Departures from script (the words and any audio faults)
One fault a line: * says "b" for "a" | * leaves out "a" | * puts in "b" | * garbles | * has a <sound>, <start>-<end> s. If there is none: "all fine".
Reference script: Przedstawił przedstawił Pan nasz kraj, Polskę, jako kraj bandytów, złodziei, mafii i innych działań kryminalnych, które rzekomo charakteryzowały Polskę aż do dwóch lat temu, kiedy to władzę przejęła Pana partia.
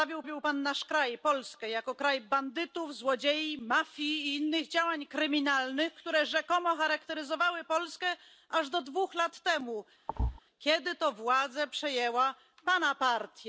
* has a thud, 10.1-10.4 s